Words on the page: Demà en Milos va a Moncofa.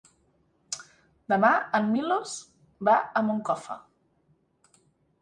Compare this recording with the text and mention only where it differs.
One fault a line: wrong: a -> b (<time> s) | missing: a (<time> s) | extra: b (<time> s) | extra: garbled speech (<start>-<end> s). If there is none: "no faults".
no faults